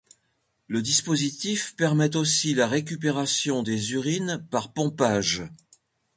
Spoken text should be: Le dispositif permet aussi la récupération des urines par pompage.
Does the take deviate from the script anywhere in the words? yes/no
no